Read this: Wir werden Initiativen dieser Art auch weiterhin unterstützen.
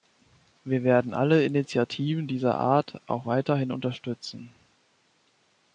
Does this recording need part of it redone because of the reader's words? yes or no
yes